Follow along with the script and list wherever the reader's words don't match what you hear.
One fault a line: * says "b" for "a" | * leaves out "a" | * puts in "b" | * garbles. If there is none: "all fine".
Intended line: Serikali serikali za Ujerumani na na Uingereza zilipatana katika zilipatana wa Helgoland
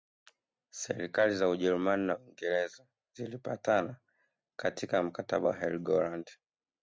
* leaves out "serikali"
* leaves out "na"
* says "mkataba" for "zilipatana"